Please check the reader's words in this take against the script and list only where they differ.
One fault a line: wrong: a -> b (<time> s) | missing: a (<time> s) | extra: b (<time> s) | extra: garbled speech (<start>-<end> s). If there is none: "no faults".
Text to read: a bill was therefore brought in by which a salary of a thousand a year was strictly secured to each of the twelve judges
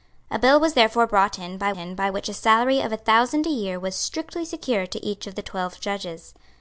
extra: in by (1.7 s)